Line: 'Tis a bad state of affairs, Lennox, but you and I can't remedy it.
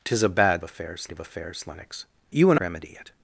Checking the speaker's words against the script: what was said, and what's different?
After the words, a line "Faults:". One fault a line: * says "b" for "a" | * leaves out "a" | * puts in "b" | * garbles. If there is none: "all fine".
'Tis a bad affairs of affairs, Lennox, you and remedy it.
Faults:
* says "affairs" for "state"
* leaves out "but"
* leaves out "I can't"